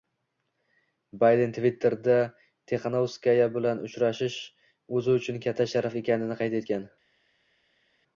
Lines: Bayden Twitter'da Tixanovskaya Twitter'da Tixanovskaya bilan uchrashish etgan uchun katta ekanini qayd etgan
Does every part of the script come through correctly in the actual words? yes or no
no